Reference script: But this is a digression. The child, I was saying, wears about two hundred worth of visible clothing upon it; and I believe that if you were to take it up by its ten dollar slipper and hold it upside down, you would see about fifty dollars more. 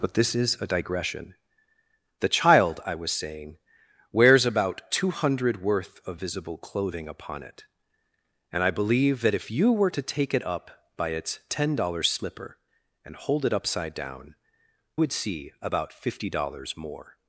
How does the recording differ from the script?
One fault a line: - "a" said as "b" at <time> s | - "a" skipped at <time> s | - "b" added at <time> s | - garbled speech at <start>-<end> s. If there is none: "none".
- "you" skipped at 14.4 s